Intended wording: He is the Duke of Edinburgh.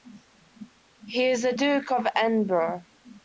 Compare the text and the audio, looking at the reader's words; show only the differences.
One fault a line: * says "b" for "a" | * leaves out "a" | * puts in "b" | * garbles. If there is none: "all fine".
all fine